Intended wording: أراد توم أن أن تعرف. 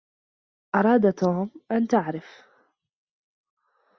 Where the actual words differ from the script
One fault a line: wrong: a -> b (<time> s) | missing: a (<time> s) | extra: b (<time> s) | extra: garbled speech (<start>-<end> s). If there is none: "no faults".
missing: أن (1.9 s)